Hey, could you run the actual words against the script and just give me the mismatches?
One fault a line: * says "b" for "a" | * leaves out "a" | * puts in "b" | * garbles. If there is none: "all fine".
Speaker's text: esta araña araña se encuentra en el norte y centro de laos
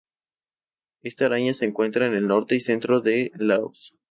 * leaves out "araña"